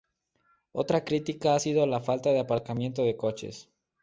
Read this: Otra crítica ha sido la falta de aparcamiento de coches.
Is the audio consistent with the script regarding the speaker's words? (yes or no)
yes